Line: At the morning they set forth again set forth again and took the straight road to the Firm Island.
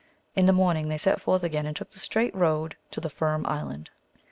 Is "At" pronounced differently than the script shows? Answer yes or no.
yes